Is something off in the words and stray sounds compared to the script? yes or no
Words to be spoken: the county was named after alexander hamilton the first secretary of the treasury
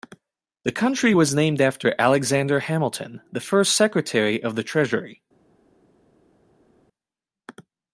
no